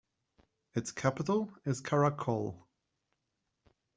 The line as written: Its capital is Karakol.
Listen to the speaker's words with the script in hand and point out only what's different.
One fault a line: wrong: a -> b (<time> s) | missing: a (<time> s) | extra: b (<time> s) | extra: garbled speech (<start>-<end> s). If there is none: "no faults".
no faults